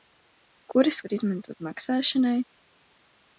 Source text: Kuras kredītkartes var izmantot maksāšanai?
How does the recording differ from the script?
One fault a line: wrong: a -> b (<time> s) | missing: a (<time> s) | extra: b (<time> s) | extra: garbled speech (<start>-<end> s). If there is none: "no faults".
missing: kredītkartes (1.0 s)